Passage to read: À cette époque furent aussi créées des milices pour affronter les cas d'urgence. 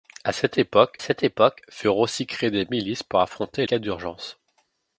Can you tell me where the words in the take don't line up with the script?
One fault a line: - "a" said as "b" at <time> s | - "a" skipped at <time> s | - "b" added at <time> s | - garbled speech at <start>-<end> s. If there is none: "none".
- "cette époque" added at 1.0 s
- "les" skipped at 3.7 s